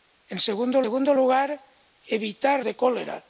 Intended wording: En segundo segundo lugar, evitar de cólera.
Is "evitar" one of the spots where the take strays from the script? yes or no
no